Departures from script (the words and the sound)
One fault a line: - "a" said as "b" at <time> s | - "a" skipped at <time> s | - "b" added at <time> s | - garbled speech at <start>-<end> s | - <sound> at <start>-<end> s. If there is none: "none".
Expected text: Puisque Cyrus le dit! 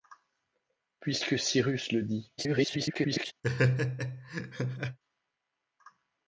- garbled speech at 2.4-3.3 s
- laugh at 3.4-5.0 s